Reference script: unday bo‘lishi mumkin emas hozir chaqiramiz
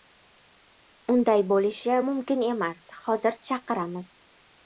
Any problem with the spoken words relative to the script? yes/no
no